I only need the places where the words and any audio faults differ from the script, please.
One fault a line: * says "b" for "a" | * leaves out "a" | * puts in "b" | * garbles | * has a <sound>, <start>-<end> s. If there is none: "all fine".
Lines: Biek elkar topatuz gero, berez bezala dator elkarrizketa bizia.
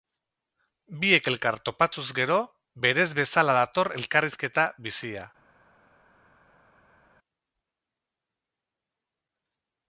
all fine